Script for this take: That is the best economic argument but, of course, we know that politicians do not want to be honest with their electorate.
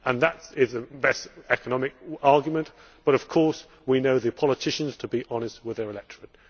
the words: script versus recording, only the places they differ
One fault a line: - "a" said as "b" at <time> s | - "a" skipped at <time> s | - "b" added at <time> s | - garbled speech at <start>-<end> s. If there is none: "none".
- "do not want" skipped at 5.0 s